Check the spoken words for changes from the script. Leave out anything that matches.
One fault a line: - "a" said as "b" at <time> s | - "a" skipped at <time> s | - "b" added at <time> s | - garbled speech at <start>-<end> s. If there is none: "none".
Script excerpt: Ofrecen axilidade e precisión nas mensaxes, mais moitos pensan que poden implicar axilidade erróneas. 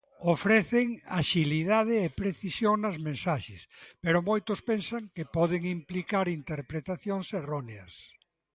- "mais" said as "pero" at 4.0 s
- "axilidade" said as "interpretacións" at 6.4 s